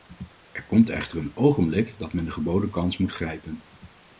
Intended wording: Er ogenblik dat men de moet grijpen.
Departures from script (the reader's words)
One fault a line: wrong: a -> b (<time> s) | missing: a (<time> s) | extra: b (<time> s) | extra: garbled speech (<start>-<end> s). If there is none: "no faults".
extra: komt echter een (0.6 s)
extra: geboden kans (2.3 s)